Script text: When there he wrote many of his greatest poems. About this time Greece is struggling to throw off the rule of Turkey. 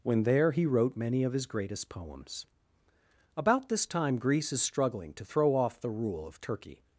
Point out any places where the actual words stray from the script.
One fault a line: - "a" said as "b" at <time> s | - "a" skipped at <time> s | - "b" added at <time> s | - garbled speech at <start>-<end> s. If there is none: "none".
none